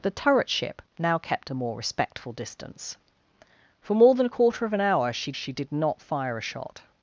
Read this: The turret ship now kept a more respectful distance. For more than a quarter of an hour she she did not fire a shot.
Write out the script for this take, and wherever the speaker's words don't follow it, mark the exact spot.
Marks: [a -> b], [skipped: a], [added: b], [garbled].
The turret ship now kept a more respectful distance. For more than a quarter of an hour she she did not fire a shot.